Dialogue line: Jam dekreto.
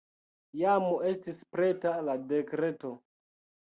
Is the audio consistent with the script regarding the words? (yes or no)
no